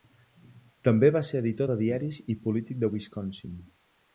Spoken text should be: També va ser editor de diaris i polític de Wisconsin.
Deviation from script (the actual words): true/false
false